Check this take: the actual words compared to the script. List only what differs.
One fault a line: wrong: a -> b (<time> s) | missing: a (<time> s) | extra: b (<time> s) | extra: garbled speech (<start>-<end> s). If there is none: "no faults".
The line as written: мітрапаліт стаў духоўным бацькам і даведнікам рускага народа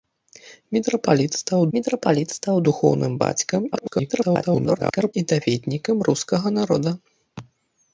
extra: мітрапаліт стаў (1.8 s)
extra: garbled speech (3.7-5.1 s)